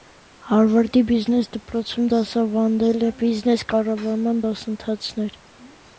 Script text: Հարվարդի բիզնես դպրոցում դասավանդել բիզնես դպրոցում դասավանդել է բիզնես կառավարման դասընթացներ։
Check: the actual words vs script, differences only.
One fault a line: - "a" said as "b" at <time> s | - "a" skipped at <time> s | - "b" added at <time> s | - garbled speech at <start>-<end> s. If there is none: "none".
- "բիզնես դպրոցում դասավանդել" skipped at 3.1 s